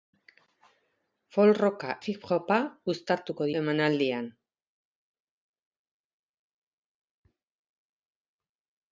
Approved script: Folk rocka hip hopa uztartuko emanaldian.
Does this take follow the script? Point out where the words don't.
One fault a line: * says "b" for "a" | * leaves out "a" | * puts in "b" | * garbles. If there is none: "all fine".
all fine